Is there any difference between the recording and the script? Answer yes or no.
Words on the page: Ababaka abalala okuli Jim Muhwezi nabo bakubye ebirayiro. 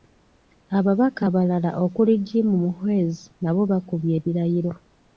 no